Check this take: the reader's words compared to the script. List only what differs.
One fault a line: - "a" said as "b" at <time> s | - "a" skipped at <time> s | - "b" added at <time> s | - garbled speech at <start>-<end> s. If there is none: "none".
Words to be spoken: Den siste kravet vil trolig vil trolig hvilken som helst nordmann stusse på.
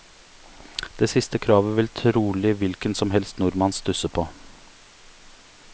- "Den" said as "Det" at 1.0 s
- "vil trolig" skipped at 2.5 s